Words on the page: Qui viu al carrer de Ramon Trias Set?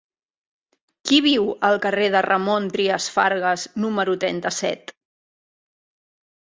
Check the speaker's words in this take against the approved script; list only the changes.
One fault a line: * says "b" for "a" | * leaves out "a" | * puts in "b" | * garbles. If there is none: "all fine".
* puts in "Fargas número trenta"